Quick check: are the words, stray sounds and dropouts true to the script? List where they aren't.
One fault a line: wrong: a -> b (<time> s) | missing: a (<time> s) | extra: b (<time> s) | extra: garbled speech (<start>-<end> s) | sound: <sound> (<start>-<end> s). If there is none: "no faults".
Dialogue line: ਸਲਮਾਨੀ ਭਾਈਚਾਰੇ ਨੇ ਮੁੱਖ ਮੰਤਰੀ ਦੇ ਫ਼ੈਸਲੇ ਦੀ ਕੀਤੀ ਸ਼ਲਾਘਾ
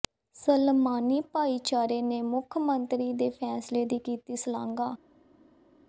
no faults